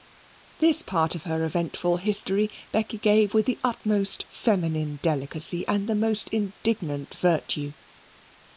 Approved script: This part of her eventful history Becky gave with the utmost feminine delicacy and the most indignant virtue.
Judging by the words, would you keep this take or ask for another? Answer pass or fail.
pass